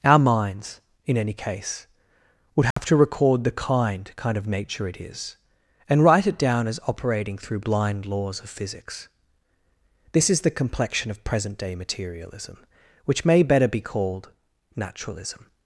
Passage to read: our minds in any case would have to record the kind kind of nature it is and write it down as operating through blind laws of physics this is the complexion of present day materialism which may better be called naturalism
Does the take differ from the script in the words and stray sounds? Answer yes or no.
yes